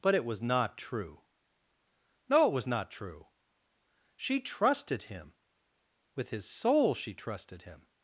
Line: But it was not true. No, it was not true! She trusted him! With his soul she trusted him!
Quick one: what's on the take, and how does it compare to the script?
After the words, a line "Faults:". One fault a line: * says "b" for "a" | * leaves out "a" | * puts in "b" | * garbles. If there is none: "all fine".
But it was not true. No, it was not true! She trusted him! With his soul she trusted him!
Faults:
all fine